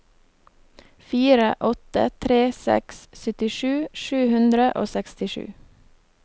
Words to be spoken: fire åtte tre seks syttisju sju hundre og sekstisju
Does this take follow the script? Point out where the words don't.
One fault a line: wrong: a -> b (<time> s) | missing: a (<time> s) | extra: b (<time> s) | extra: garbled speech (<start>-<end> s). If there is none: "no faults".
no faults